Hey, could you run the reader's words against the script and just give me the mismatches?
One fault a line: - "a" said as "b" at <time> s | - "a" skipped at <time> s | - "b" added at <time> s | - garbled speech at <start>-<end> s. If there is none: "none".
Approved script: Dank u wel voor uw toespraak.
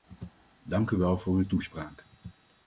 none